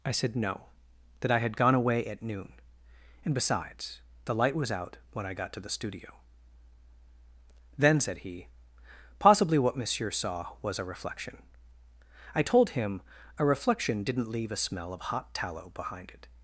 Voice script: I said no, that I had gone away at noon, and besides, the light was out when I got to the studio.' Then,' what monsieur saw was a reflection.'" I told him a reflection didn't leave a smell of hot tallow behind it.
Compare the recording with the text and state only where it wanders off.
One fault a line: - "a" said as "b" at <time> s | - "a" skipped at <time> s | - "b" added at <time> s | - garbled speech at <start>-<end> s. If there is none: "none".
- "said he possibly" added at 8.0 s